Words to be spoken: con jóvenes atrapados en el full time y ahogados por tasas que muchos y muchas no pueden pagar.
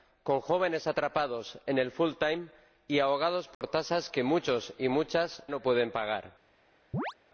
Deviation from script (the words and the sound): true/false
true